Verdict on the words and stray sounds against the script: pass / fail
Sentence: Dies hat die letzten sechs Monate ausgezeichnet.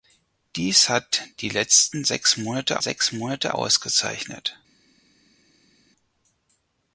fail